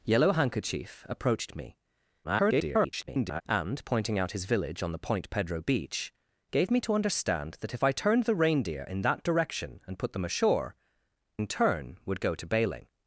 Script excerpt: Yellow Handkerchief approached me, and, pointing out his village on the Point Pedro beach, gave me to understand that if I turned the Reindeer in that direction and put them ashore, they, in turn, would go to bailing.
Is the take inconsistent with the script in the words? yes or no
yes